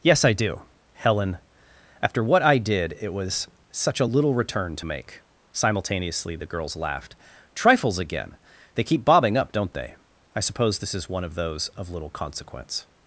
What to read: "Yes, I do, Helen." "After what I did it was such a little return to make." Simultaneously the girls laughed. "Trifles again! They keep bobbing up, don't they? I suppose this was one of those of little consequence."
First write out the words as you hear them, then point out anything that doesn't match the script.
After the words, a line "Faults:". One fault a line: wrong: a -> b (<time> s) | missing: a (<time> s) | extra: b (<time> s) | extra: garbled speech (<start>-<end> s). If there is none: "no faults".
"Yes, I do, Helen." "After what I did it was such a little return to make." Simultaneously the girls laughed. "Trifles again! They keep bobbing up, don't they? I suppose this is one of those of little consequence."
Faults:
wrong: was -> is (10.9 s)